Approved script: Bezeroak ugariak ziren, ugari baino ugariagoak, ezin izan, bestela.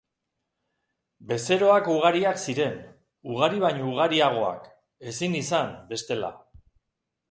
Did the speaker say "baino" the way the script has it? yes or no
yes